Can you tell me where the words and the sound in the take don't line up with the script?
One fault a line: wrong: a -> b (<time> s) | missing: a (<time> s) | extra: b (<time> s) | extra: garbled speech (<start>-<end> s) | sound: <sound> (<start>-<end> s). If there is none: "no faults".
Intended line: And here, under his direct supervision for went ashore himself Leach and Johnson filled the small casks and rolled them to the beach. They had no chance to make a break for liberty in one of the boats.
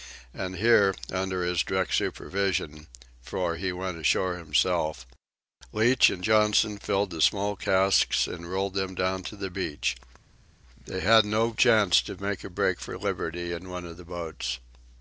extra: he (3.6 s)
extra: down (8.9 s)